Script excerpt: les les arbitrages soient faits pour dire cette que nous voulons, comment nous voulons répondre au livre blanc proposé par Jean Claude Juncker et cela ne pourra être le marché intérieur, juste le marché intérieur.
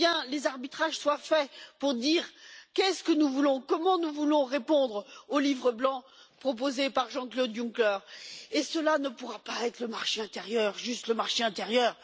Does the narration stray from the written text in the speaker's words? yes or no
yes